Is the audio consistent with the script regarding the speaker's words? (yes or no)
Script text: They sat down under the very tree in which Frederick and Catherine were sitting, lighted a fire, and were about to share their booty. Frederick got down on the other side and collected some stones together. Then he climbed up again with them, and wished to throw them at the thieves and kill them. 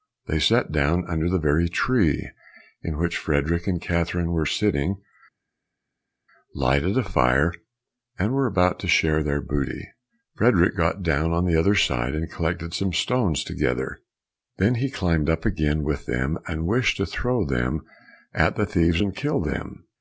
yes